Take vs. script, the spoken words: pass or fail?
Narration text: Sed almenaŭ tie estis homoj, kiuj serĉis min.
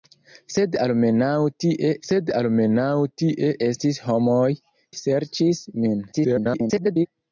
fail